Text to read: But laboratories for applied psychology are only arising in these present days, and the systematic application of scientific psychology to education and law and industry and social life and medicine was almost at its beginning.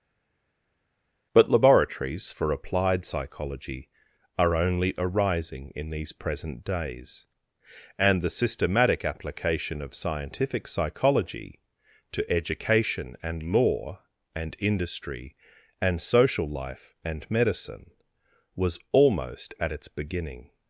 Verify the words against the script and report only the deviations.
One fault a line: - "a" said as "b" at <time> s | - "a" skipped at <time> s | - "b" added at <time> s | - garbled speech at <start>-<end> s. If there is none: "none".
none